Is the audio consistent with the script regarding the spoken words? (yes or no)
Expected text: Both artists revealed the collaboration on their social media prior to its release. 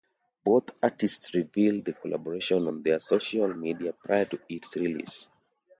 yes